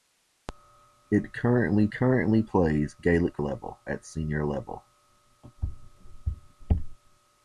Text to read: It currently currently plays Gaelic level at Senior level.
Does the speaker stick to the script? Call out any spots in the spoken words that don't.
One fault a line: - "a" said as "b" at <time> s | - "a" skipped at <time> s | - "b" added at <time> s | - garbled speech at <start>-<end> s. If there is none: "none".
none